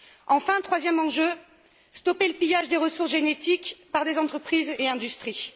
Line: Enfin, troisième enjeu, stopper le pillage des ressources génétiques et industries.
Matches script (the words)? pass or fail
fail